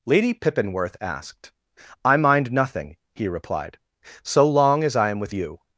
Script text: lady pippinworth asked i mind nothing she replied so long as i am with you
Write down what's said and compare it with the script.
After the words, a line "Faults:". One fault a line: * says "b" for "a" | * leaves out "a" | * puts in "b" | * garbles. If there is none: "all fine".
lady pippinworth asked i mind nothing he replied so long as i am with you
Faults:
* says "he" for "she"